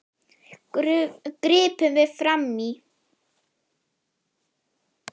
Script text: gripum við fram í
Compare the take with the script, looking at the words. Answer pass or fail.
pass